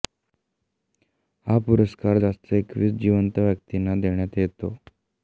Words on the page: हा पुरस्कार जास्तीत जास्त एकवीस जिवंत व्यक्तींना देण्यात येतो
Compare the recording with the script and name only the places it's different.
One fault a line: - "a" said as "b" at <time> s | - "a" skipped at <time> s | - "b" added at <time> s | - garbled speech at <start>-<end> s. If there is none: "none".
- "जास्तीत" skipped at 2.2 s